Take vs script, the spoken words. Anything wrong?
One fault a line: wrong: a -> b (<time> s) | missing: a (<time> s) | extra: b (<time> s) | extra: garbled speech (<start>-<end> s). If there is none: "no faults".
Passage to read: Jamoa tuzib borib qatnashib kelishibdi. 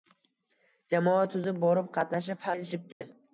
no faults